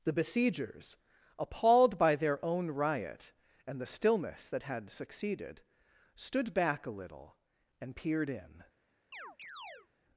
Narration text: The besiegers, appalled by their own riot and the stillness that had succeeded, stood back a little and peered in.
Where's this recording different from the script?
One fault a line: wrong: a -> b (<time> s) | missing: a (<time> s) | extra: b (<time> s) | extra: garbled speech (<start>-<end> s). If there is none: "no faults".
no faults